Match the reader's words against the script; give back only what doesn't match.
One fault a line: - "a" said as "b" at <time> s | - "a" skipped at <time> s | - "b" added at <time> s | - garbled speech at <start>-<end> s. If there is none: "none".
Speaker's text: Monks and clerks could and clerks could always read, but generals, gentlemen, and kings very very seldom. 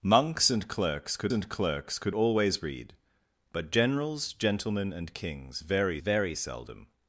none